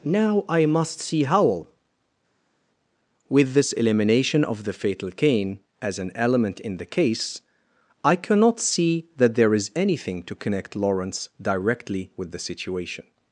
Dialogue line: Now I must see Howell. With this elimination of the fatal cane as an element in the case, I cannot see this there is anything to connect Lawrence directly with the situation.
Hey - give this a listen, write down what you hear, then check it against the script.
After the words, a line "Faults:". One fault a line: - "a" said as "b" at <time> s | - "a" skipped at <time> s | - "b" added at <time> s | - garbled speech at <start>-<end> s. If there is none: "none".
Now I must see Howell. With this elimination of the fatal cane as an element in the case, I cannot see that there is anything to connect Lawrence directly with the situation.
Faults:
- "this" said as "that" at 9.2 s